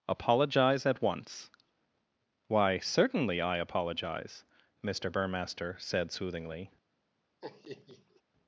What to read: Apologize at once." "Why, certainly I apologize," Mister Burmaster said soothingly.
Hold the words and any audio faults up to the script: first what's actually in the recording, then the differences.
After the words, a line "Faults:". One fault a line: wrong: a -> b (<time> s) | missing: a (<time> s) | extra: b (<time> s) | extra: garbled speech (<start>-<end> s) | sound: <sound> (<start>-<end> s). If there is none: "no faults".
Apologize at once." "Why, certainly I apologize," Mister Burmaster said soothingly.
Faults:
sound: laugh (7.4-8.2 s)